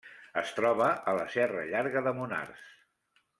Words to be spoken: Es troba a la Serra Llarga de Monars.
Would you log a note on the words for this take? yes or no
no